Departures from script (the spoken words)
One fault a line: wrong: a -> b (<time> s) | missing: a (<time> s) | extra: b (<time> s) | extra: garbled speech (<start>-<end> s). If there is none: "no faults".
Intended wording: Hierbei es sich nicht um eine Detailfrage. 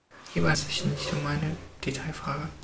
no faults